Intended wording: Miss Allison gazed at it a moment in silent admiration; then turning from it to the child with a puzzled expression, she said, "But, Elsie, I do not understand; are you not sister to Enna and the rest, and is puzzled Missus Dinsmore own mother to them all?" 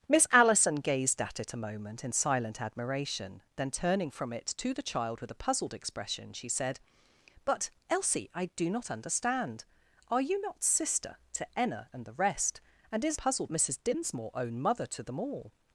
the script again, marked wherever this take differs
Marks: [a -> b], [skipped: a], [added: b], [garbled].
Miss Allison gazed at it a moment in silent admiration; then turning from it to the child with a puzzled expression, she said, "But, Elsie, I do not understand; are you not sister to Enna and the rest, and is puzzled Missus Dinsmore own mother to them all?"